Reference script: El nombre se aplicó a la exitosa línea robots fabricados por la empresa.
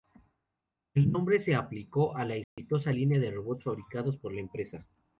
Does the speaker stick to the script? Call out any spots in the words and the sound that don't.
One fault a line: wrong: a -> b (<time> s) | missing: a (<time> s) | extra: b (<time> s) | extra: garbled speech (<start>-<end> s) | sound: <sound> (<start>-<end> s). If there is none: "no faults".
sound: dropout (2.4-2.6 s)
extra: de (3.2 s)